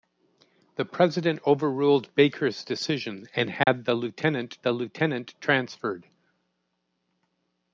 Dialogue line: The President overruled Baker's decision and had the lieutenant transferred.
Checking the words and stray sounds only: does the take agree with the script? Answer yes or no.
no